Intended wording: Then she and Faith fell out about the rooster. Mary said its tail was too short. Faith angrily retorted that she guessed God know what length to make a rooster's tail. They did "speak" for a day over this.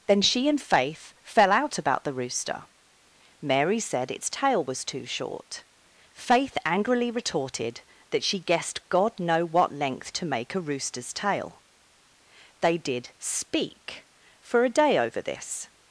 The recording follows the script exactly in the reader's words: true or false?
true